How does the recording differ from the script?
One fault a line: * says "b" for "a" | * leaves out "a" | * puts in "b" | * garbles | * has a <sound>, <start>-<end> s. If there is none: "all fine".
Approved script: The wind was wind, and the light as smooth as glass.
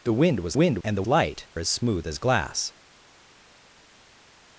all fine